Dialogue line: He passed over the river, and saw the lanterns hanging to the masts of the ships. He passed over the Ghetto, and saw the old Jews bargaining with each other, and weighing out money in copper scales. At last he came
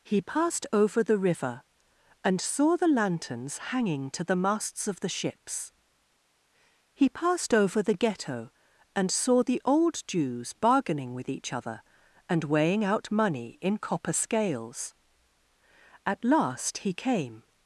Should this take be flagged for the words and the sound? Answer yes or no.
no